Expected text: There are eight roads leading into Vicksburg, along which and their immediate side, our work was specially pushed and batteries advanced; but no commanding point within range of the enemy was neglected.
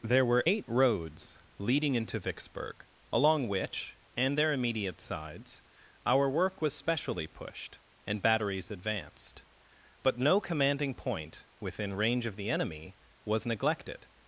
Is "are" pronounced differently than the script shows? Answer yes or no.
yes